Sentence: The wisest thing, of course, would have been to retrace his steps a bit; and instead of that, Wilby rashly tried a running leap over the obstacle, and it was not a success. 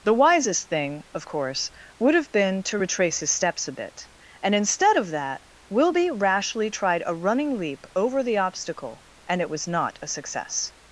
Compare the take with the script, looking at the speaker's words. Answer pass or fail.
pass